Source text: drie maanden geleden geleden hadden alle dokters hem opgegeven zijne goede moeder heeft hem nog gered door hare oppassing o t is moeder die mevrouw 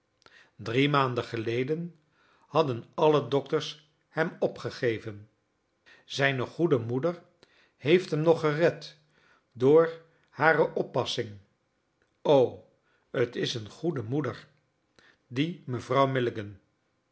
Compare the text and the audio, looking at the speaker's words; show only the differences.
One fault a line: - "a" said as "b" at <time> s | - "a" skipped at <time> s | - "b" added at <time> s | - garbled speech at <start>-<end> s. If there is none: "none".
- "geleden" skipped at 2.0 s
- "een goede" added at 13.5 s